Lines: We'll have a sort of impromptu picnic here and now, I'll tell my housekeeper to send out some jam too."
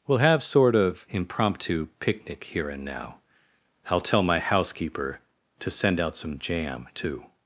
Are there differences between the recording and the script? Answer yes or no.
yes